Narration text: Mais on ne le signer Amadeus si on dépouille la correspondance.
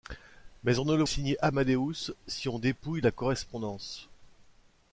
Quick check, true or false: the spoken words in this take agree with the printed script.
true